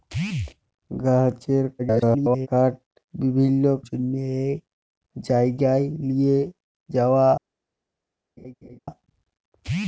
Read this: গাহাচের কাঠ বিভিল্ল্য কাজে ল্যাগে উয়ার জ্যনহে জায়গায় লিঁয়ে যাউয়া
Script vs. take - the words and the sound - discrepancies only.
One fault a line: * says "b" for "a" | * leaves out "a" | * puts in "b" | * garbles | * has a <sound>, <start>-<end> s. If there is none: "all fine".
* garbles
* leaves out "কাজে ল্যাগে উয়ার"
* has a laugh, 8.4-8.8 s